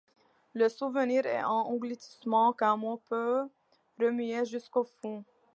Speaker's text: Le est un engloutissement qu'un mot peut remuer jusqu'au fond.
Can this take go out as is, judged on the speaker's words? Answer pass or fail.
fail